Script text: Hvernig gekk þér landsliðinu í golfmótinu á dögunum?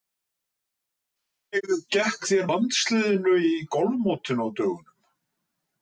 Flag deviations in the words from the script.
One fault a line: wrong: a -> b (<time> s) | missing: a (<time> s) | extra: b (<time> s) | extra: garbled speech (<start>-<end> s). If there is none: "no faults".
no faults